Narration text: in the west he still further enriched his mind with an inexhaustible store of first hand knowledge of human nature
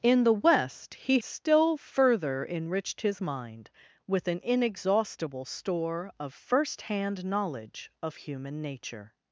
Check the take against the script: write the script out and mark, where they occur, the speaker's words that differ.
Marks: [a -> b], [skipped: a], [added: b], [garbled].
in the west he still further enriched his mind with an inexhaustible store of first hand knowledge of human nature